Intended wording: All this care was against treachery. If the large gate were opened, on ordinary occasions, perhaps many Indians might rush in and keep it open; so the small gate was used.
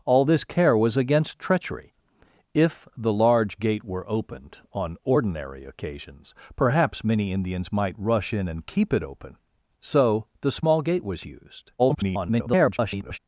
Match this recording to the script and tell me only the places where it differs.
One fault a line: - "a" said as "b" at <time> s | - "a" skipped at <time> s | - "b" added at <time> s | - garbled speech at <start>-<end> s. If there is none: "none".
- garbled speech at 11.8-13.2 s